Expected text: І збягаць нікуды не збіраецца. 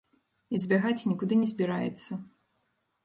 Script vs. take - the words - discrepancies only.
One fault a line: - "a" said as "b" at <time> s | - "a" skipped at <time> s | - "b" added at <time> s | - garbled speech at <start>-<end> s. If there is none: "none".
none